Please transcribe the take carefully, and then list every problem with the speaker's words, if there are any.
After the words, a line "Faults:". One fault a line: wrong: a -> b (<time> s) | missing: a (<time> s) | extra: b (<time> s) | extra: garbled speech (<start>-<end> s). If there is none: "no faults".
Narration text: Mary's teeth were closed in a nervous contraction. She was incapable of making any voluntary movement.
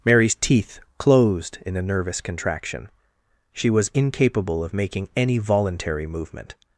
Mary's teeth closed in a nervous contraction. She was incapable of making any voluntary movement.
Faults:
missing: were (0.8 s)